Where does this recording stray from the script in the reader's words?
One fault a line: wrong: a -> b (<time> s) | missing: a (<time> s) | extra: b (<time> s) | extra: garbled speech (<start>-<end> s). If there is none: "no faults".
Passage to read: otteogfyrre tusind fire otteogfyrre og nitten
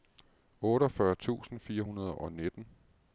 wrong: otteogfyrre -> hundrede (1.8 s)